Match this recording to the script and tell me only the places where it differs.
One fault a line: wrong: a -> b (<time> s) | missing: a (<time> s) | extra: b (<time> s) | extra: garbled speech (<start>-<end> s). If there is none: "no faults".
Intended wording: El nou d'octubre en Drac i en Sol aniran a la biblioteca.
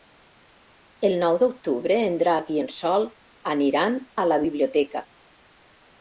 no faults